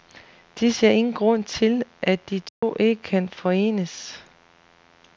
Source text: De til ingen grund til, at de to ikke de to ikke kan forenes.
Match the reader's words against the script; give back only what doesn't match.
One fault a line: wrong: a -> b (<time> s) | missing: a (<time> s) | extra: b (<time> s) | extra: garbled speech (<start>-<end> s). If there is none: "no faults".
wrong: til -> ser (0.7 s)
missing: de to ikke (3.0 s)